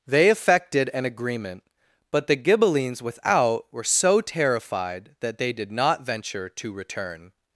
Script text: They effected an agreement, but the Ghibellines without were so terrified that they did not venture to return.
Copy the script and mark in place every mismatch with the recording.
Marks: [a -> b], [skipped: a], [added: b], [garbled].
They effected an agreement, but the Ghibellines without were so terrified that they did not venture to return.